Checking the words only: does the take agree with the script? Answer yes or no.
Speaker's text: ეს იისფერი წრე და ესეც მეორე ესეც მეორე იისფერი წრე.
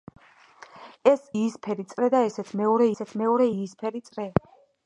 yes